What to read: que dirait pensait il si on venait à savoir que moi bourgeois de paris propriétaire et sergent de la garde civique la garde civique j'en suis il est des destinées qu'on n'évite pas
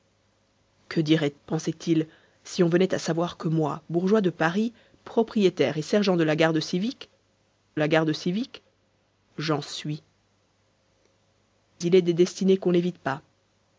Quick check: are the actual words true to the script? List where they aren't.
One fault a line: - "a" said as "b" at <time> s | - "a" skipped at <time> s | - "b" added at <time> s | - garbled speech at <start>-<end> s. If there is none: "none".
none